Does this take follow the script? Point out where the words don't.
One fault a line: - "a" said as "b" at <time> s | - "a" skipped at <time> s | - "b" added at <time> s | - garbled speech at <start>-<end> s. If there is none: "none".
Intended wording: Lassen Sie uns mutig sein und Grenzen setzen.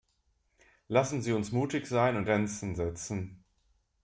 none